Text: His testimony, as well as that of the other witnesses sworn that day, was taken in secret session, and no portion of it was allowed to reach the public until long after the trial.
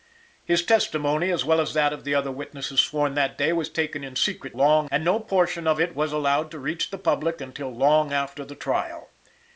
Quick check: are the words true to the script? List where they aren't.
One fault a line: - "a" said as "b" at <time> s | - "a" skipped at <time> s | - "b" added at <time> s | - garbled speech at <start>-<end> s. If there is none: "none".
- "session" said as "long" at 4.5 s